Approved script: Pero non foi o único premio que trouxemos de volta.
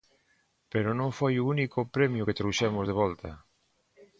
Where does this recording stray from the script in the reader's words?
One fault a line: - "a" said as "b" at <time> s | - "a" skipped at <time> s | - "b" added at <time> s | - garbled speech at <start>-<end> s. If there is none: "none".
none